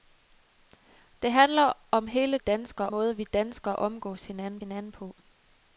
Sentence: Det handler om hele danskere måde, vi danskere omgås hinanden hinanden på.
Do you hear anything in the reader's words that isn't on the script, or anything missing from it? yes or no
no